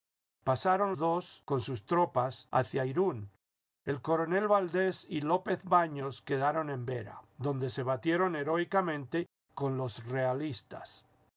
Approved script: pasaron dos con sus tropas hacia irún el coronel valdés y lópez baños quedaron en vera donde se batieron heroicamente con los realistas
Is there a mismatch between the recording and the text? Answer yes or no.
no